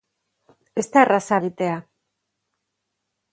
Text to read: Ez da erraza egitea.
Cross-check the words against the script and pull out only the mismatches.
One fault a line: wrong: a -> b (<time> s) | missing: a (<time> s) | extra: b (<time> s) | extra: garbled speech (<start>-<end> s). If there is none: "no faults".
no faults